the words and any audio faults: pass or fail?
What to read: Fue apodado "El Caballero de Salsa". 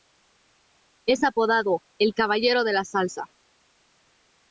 fail